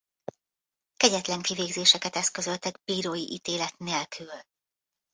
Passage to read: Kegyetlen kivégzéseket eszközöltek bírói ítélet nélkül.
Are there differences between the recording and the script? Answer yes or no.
no